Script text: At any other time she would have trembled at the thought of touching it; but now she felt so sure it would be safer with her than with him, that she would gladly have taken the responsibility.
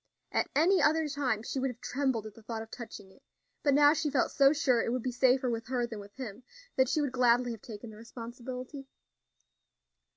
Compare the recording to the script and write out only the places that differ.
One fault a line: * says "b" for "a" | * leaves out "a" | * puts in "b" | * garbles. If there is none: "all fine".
all fine